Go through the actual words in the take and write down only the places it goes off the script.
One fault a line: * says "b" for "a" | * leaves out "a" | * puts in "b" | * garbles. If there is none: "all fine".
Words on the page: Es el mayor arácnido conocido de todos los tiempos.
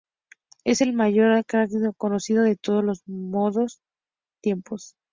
all fine